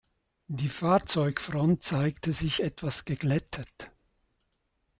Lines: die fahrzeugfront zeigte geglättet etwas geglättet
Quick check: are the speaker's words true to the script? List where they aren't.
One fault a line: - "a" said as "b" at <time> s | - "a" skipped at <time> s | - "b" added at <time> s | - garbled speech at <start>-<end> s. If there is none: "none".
- "geglättet" said as "sich" at 2.3 s